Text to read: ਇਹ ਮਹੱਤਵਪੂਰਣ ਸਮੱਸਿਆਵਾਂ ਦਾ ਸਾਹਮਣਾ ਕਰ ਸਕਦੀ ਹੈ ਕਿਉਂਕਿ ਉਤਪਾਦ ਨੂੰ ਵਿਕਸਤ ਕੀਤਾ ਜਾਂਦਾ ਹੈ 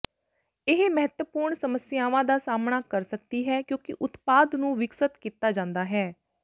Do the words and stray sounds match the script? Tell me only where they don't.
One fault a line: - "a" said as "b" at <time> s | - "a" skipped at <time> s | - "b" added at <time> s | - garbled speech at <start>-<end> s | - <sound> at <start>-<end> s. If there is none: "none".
none